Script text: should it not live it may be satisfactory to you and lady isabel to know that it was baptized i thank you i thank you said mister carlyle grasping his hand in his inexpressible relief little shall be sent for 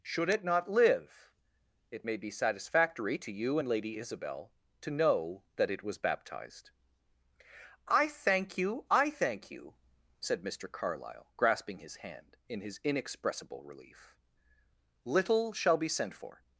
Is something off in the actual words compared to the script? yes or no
no